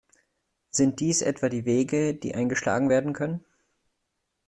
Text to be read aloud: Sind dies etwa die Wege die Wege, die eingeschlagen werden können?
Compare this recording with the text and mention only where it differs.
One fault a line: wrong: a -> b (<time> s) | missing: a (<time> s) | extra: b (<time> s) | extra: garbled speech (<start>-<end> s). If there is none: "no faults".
missing: Wege die (2.3 s)